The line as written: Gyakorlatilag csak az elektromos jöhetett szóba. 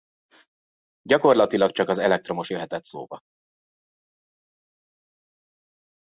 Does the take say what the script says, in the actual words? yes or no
yes